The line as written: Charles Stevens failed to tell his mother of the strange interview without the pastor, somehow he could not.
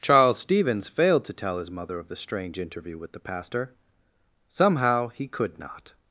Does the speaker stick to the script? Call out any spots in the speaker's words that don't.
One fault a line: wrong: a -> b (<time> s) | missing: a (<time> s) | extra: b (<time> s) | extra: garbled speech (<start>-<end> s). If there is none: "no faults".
wrong: without -> with (3.0 s)